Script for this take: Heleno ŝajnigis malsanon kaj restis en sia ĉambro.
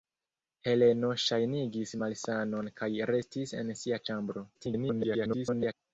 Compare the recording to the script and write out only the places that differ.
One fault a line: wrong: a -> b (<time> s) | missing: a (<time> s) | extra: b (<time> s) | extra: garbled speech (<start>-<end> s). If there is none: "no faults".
extra: garbled speech (4.5-5.7 s)